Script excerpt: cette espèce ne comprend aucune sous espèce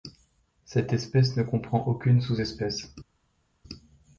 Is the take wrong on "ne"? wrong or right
right